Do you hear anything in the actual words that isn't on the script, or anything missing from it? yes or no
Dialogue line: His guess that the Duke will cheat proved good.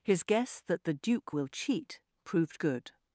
no